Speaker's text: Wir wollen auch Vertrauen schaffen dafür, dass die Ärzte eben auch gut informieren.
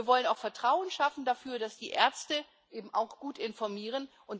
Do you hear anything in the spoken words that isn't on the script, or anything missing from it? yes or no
no